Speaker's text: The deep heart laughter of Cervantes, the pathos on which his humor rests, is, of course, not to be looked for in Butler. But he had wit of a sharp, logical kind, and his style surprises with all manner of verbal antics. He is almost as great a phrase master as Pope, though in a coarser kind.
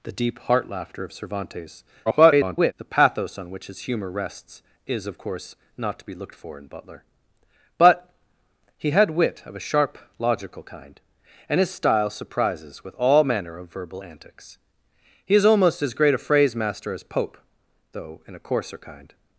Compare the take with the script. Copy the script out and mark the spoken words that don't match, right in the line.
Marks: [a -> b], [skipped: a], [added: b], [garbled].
The deep heart laughter of Cervantes, [garbled] the pathos on which his humor rests, is, of course, not to be looked for in Butler. But he had wit of a sharp, logical kind, and his style surprises with all manner of verbal antics. He is almost as great a phrase master as Pope, though in a coarser kind.